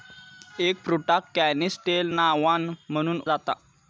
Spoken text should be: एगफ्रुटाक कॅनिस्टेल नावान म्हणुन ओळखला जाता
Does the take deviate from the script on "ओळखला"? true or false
true